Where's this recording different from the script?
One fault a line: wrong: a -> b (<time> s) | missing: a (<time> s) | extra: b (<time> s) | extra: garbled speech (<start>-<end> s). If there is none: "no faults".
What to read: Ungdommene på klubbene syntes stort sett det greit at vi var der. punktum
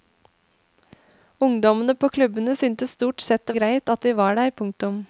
no faults